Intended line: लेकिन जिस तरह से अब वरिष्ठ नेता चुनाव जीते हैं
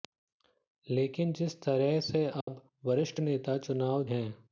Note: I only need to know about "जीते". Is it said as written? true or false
false